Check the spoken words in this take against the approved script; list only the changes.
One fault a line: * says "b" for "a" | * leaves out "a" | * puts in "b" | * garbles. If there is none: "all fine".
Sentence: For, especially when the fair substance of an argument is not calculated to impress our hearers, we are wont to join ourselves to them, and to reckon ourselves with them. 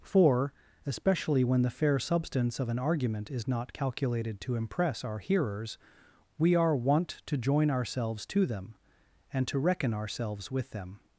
all fine